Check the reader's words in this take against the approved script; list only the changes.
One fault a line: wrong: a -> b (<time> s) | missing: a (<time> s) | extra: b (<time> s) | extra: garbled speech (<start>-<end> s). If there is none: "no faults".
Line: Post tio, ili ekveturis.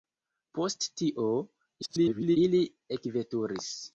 extra: garbled speech (1.8-2.4 s)